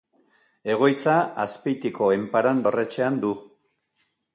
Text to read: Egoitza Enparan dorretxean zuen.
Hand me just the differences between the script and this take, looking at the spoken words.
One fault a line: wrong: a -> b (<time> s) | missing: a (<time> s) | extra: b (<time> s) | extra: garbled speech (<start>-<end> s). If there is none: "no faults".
extra: Azpeitiko (1.4 s)
wrong: zuen -> du (3.3 s)